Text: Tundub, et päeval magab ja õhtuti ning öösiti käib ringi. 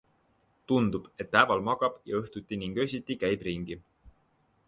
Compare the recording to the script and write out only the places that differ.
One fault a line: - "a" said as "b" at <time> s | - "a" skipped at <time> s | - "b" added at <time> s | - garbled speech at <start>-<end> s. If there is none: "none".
none